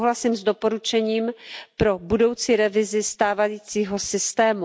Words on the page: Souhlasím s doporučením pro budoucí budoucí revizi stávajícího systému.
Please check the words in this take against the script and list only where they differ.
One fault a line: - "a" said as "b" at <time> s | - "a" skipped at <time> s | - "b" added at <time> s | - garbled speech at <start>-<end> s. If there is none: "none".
- "budoucí" skipped at 2.6 s